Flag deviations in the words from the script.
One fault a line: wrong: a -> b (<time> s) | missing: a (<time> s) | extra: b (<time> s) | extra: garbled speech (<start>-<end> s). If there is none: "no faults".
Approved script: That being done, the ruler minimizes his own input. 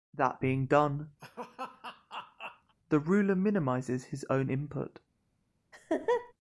no faults